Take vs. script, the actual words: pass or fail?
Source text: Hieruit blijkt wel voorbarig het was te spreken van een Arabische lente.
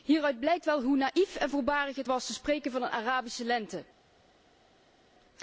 fail